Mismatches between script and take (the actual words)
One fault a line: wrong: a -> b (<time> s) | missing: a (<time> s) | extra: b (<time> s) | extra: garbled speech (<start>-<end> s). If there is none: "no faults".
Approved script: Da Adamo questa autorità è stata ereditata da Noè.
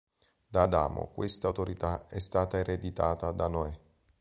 no faults